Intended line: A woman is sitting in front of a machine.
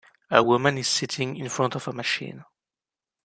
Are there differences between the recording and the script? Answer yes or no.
no